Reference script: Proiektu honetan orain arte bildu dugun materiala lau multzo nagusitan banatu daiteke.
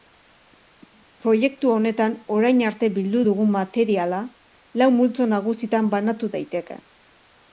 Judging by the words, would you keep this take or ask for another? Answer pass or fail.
pass